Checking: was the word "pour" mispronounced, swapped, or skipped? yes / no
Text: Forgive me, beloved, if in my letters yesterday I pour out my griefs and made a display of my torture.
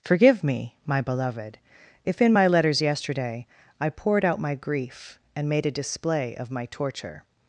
yes